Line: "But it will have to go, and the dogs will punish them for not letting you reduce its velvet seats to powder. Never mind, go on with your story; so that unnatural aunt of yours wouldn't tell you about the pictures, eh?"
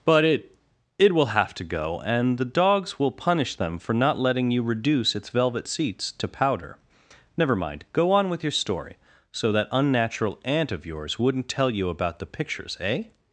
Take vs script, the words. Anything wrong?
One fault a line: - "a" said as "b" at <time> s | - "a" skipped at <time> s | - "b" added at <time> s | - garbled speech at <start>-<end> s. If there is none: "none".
- "it" added at 1.0 s